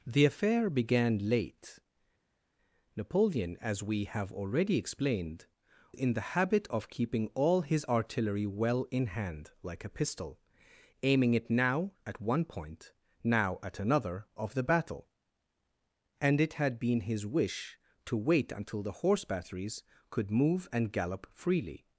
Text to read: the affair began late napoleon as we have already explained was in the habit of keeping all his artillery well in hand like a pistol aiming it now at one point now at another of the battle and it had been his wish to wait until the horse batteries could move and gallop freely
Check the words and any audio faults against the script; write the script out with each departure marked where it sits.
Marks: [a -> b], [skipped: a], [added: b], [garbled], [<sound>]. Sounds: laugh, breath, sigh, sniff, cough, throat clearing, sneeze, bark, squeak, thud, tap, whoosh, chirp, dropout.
the affair began late napoleon as we have already explained [skipped: was] in the habit of keeping all his artillery well in hand like a pistol aiming it now at one point now at another of the battle and it had been his wish to wait until the horse batteries could move and gallop freely